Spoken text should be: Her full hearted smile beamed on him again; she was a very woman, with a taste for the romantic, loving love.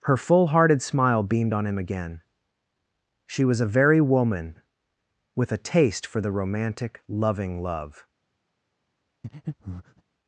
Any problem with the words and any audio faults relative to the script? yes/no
yes